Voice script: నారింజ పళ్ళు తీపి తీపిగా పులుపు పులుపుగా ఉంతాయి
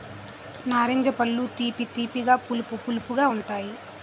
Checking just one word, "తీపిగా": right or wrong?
right